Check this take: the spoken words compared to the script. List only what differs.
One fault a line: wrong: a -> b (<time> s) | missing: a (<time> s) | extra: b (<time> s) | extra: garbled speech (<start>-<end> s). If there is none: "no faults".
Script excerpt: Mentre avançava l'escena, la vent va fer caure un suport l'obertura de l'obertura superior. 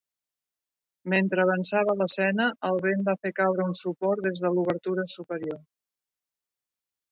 wrong: la -> el (2.7 s)
wrong: l'obertura -> des (4.3 s)